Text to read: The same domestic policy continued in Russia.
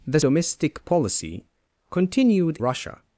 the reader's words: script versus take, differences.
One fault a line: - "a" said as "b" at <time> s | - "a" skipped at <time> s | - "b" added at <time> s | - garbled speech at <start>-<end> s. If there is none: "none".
- "same" skipped at 0.2 s
- "in" skipped at 2.6 s